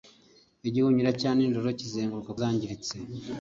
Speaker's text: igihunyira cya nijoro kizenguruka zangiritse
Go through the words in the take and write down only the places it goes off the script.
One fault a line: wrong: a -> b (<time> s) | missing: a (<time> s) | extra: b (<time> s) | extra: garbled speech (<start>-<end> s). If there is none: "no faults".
no faults